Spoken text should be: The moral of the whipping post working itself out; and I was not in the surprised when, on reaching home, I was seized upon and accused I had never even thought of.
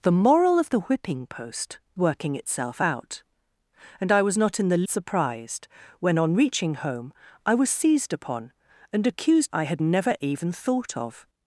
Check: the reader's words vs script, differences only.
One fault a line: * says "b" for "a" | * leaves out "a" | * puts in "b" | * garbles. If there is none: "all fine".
all fine